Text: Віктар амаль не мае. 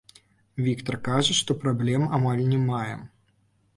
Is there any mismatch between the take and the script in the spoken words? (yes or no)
yes